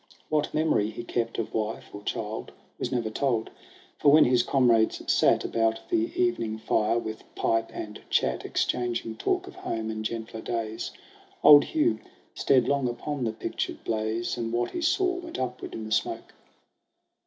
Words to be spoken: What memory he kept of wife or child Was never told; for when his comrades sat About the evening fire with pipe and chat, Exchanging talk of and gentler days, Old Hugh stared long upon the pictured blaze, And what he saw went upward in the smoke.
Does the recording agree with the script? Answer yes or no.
no